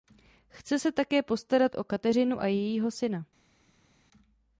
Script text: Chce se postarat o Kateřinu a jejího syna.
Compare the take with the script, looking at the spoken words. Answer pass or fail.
fail